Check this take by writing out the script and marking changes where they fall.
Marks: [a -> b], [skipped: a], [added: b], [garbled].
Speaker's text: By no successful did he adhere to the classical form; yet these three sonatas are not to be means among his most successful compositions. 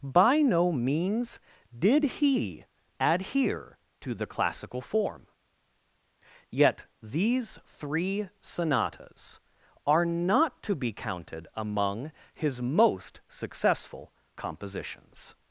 By no [successful -> means] did he adhere to the classical form; yet these three sonatas are not to be [means -> counted] among his most successful compositions.